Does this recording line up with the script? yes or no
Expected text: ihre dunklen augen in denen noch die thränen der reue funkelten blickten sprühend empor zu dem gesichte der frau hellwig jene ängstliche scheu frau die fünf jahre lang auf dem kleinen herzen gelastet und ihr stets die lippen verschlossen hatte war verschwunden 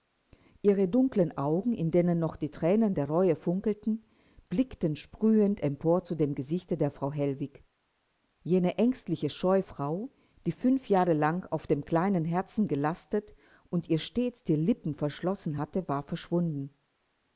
yes